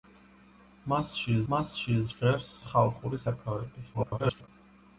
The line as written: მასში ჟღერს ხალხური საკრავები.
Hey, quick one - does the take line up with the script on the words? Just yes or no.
no